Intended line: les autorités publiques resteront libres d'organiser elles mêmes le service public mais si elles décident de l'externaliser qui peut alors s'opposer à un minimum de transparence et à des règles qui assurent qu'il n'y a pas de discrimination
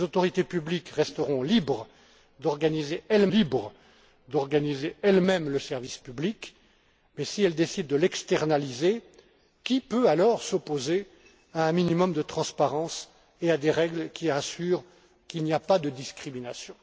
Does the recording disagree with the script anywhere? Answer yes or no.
yes